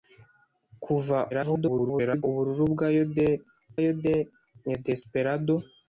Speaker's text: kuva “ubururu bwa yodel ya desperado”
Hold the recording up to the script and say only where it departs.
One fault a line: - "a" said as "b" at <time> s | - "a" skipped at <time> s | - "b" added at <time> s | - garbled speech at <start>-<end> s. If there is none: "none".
- garbled speech at 1.3-2.2 s
- "yodel" added at 3.8 s